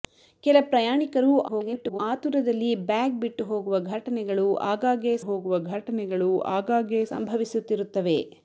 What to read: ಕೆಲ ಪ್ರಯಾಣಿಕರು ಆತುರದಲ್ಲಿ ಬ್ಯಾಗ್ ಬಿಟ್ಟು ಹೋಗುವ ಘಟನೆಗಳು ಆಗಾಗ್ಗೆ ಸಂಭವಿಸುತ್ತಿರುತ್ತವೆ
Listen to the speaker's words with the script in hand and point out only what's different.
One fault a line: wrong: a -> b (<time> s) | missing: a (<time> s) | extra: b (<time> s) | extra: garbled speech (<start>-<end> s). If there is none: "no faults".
extra: garbled speech (1.5-2.0 s)
extra: ಹೋಗುವ ಘಟನೆಗಳು ಆಗಾಗ್ಗೆ (5.2 s)